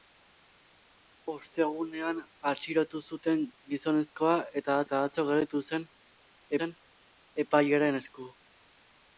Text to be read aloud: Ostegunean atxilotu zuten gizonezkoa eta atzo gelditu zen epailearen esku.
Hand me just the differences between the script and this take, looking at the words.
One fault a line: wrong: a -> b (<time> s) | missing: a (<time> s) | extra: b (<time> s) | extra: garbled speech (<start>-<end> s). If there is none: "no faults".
extra: eta (4.9 s)
extra: zen (6.6 s)